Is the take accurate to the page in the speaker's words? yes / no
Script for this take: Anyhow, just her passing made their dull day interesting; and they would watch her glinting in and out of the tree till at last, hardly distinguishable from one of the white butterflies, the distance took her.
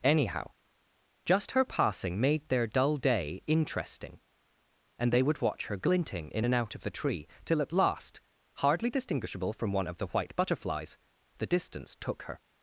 yes